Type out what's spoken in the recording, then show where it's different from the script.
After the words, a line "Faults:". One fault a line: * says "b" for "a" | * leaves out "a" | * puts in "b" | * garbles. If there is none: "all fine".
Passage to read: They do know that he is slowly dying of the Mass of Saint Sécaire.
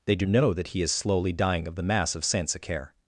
They do know that he is slowly dying of the Mass of Saint Sécaire.
Faults:
all fine